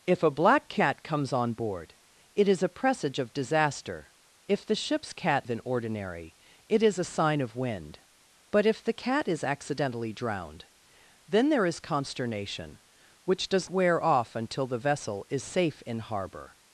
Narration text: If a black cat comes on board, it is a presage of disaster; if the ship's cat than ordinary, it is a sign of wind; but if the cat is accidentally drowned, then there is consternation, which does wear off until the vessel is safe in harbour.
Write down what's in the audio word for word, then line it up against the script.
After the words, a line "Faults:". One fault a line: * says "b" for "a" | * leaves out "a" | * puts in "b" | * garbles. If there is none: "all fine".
If a black cat comes on board, it is a presage of disaster; if the ship's cat than ordinary, it is a sign of wind; but if the cat is accidentally drowned, then there is consternation, which does wear off until the vessel is safe in harbour.
Faults:
all fine